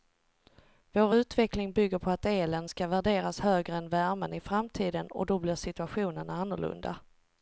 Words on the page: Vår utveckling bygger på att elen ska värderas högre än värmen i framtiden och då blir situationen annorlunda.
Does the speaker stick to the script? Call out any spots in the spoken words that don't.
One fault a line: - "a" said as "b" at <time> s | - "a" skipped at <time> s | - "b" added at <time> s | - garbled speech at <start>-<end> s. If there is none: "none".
none